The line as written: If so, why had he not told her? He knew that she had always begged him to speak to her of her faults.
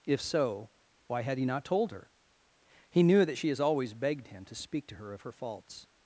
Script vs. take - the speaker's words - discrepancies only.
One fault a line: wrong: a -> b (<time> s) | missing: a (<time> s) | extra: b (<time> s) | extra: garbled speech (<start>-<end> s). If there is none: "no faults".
wrong: had -> has (3.5 s)